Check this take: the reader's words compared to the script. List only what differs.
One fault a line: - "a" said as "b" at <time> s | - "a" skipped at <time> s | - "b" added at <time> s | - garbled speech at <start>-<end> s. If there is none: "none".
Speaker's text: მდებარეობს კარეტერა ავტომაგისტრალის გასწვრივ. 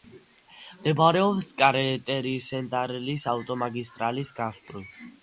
- "სენტრალის" added at 2.5 s